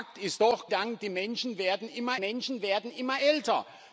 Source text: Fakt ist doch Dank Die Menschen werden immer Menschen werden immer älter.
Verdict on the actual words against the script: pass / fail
pass